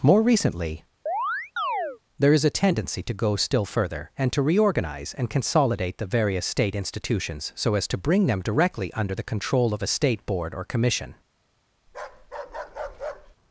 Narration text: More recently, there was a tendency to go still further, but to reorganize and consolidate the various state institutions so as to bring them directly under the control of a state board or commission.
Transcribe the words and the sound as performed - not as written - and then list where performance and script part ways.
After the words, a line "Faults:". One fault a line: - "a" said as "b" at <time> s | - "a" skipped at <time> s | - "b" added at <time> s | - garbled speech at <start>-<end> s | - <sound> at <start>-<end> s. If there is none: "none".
More recently, there is a tendency to go still further, and to reorganize and consolidate the various state institutions so as to bring them directly under the control of a state board or commission.
Faults:
- chirp at 1.1-2.0 s
- "was" said as "is" at 2.3 s
- "but" said as "and" at 4.2 s
- bark at 11.9-13.4 s